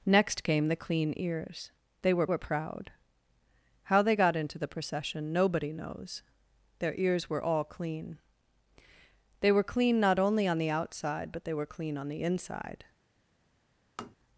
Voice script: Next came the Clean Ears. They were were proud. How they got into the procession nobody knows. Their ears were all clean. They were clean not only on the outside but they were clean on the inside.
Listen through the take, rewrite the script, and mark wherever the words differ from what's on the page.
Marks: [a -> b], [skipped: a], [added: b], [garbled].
Next came the Clean Ears. They were were proud. How they got into the procession nobody knows. Their ears were all clean. They were clean not only on the outside but they were clean on the inside.